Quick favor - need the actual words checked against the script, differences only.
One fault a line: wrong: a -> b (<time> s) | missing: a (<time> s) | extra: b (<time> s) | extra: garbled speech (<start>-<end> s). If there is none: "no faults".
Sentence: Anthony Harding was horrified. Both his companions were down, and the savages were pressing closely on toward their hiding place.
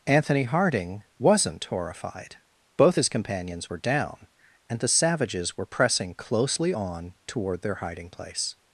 wrong: was -> wasn't (1.2 s)